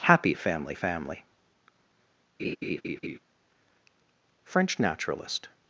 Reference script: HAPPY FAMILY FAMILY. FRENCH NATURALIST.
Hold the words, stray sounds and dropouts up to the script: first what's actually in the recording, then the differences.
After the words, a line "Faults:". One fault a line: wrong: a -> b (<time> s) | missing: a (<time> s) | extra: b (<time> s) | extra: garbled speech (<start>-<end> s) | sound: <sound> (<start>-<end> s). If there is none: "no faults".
HAPPY FAMILY FAMILY. FRENCH NATURALIST.
Faults:
sound: laugh (2.4-3.2 s)